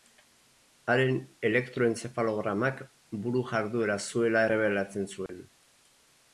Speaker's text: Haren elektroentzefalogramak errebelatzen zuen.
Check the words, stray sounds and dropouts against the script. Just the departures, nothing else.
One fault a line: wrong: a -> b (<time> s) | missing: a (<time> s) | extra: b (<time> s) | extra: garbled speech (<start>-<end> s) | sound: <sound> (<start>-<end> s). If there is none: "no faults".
extra: buru jarduera zuela (3.3 s)
sound: dropout (5.3-5.3 s)